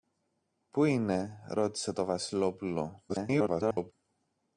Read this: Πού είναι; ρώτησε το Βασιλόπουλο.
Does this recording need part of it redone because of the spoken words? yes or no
yes